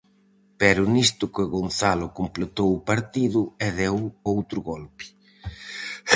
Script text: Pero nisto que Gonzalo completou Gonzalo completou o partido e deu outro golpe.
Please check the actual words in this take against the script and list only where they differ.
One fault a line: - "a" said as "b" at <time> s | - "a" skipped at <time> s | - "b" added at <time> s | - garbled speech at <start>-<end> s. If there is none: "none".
- "Gonzalo completou" skipped at 2.7 s